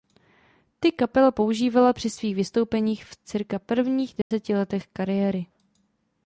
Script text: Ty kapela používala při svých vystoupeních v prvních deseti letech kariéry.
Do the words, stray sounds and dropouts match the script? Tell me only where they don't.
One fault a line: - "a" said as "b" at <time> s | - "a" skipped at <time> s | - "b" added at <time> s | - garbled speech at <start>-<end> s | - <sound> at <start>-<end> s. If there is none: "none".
- "cca" added at 3.1 s
- dropout at 4.2-4.3 s